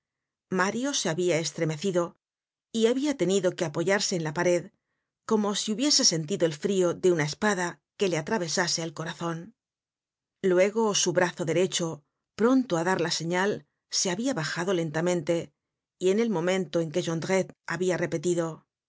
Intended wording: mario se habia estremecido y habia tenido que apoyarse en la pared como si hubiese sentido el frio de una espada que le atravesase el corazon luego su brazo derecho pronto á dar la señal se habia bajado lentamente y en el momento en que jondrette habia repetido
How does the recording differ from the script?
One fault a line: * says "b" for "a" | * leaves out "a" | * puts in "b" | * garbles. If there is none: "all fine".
all fine